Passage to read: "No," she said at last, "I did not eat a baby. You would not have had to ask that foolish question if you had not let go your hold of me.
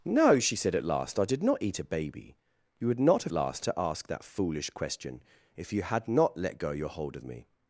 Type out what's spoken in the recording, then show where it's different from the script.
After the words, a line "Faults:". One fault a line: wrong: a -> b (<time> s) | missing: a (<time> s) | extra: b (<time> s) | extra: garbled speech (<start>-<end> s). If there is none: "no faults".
"No," she said at last, "I did not eat a baby. You would not have last to ask that foolish question if you had not let go your hold of me.
Faults:
wrong: had -> last (3.3 s)